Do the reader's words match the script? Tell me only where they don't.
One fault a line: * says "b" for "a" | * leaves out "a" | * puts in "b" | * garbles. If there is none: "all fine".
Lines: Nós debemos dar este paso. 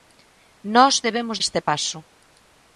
* leaves out "dar"